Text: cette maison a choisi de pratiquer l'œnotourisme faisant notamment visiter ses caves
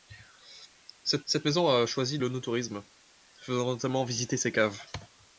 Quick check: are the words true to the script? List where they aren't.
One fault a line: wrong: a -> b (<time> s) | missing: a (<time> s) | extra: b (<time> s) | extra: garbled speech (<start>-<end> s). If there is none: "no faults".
extra: cette (1.2 s)
missing: de pratiquer (2.2 s)